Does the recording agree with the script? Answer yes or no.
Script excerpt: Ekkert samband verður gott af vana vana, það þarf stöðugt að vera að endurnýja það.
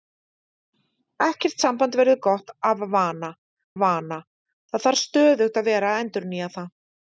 yes